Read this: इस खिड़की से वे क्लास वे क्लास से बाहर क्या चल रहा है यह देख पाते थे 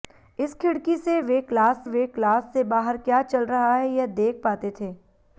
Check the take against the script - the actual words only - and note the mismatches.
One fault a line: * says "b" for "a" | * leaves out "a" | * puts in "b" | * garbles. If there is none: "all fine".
all fine